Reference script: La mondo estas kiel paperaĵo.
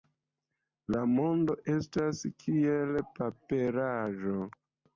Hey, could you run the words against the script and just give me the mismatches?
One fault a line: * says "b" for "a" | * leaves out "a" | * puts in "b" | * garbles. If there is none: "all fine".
all fine